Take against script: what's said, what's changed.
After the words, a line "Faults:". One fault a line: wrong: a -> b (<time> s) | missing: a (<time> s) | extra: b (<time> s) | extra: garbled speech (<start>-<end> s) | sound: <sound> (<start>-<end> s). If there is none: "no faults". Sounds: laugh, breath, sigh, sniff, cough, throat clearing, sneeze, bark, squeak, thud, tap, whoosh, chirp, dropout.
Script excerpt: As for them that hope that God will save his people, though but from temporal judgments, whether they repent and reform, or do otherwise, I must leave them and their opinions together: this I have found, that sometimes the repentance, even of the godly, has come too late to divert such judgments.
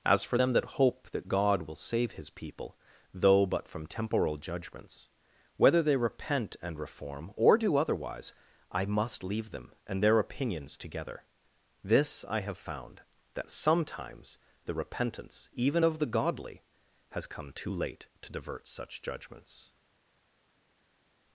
As for them that hope that God will save his people, though but from temporal judgments, whether they repent and reform, or do otherwise, I must leave them and their opinions together: this I have found, that sometimes the repentance, even of the godly, has come too late to divert such judgments.
Faults:
no faults